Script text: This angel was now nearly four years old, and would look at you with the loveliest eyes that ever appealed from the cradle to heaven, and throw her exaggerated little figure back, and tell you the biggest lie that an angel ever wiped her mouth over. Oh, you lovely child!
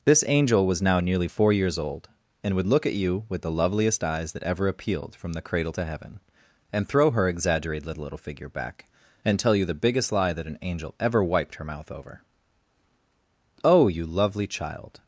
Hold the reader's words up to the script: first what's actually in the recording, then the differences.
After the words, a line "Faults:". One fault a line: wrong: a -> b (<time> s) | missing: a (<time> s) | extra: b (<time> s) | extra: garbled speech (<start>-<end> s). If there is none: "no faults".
This angel was now nearly four years old, and would look at you with the loveliest eyes that ever appealed from the cradle to heaven, and throw her exaggerated little little figure back, and tell you the biggest lie that an angel ever wiped her mouth over. Oh, you lovely child!
Faults:
extra: little (8.0 s)